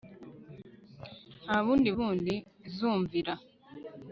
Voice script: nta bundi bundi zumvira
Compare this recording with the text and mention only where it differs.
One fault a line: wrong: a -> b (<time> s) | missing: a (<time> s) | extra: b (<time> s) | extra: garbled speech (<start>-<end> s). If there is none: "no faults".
no faults